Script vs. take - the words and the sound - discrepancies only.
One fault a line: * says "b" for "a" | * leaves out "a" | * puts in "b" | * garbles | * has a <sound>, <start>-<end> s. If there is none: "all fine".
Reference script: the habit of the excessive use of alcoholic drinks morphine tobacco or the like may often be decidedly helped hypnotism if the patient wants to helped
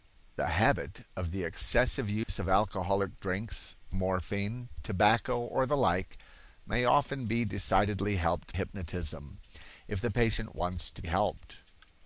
* has a dropout, 2.2-2.3 s